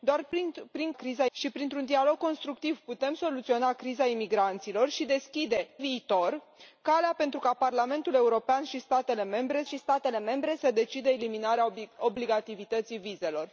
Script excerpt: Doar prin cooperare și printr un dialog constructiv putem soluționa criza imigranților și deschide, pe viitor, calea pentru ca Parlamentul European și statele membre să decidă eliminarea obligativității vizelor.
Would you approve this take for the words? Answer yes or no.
no